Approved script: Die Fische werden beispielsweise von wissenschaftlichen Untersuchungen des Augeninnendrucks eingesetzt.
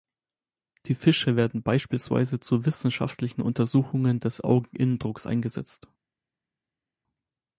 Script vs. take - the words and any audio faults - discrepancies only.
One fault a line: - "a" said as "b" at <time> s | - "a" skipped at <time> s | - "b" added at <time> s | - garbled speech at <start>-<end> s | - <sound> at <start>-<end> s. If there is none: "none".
- "von" said as "zu" at 2.4 s